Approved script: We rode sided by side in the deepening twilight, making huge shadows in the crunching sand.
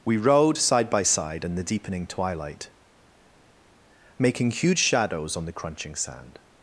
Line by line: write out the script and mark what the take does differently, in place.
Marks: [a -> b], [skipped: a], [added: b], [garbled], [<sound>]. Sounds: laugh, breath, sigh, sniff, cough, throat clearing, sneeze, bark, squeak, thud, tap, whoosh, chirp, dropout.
We rode [sided -> side] by side in the deepening twilight, making huge shadows [in -> on] the crunching sand.